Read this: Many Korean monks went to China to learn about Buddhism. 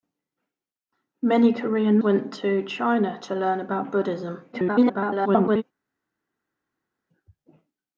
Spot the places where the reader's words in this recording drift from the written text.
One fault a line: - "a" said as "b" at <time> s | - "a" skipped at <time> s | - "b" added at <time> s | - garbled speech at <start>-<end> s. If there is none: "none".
- "monks" skipped at 2.0 s
- garbled speech at 4.5-5.6 s